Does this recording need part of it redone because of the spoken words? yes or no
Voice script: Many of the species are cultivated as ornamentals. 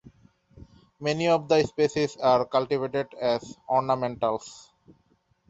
no